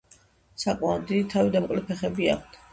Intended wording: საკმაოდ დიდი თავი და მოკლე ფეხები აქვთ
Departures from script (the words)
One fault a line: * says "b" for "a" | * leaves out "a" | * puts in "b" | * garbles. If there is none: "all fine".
all fine